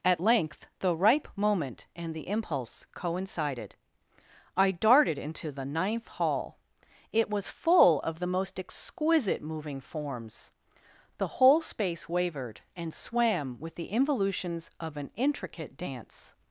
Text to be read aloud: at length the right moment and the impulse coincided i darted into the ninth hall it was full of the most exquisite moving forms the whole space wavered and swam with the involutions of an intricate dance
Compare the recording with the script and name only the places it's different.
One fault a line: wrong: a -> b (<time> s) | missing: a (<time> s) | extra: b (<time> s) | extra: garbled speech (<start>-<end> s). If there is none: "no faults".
wrong: right -> ripe (0.9 s)